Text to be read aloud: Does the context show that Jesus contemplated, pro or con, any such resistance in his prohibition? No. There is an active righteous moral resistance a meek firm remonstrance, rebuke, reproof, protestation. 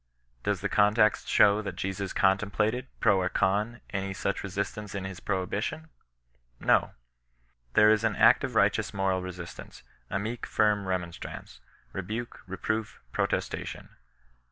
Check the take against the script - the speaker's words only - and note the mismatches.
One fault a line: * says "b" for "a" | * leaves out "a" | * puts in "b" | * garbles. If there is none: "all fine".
all fine